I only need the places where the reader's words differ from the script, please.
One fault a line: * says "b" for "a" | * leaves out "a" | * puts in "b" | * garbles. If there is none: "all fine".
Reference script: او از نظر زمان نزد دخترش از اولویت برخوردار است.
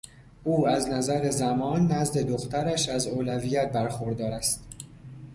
all fine